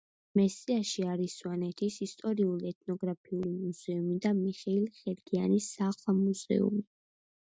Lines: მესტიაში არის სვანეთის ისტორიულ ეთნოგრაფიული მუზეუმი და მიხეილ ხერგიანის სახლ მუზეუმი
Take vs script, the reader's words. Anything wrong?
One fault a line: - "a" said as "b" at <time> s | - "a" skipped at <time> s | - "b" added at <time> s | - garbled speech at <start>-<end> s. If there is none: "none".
none